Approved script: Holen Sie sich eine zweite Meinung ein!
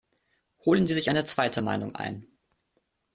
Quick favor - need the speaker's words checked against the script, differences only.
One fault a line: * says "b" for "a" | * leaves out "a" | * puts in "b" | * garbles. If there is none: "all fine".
all fine